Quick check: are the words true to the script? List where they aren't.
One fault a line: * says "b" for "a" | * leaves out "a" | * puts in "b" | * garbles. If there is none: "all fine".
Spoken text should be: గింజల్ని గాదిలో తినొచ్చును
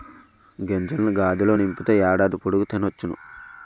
* puts in "నింపితే ఏడాది పొడుగు"